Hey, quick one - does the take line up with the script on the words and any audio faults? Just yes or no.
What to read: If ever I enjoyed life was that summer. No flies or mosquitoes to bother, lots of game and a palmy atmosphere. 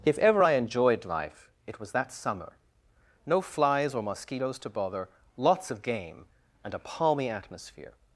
no